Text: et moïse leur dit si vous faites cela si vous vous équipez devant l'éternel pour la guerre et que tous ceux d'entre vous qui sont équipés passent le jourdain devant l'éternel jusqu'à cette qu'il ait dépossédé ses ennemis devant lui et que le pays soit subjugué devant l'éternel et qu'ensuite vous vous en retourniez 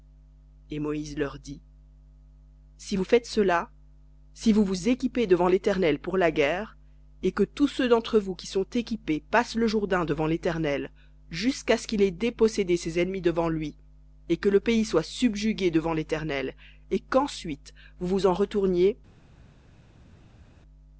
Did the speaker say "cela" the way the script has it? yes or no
yes